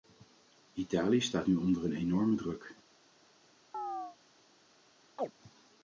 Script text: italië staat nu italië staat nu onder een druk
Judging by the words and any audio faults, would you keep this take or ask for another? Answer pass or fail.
fail